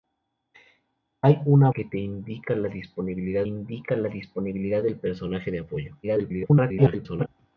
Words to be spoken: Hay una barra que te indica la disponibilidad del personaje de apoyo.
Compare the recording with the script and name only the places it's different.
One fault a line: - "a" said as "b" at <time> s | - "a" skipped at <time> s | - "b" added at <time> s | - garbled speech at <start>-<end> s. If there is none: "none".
- "barra" skipped at 1.7 s
- "indica la disponibilidad" added at 3.4 s
- garbled speech at 6.0-7.3 s